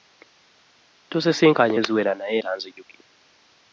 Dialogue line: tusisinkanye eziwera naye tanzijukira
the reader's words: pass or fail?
pass